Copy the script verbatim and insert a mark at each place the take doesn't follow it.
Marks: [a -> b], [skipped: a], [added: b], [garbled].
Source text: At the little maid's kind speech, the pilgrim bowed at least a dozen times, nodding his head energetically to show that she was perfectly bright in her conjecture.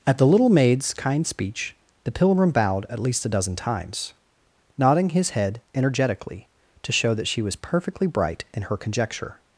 At the little maid's kind speech, the pilgrim bowed at least a dozen times, nodding his head energetically to show that she was perfectly bright in her conjecture.